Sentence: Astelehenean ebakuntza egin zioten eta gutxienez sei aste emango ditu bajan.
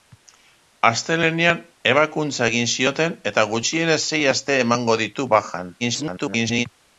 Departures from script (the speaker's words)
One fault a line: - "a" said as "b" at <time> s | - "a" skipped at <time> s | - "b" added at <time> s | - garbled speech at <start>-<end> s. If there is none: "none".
- garbled speech at 5.8-6.7 s